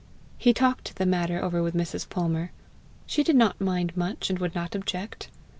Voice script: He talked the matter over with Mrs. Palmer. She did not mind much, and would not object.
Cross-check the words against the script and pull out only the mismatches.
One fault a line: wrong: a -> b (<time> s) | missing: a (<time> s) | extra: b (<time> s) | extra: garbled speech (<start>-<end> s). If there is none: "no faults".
no faults